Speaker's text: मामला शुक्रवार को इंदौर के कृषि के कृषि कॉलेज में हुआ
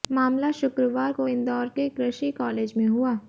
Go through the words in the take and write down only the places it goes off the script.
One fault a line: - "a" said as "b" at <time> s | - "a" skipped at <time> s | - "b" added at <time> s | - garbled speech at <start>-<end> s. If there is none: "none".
- "के कृषि" skipped at 2.3 s